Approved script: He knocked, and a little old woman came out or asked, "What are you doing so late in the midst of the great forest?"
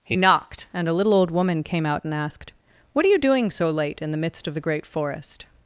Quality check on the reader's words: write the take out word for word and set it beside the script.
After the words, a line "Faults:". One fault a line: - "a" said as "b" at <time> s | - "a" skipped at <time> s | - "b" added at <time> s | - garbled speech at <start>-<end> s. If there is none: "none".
He knocked, and a little old woman came out and asked, "What are you doing so late in the midst of the great forest?"
Faults:
- "or" said as "and" at 2.0 s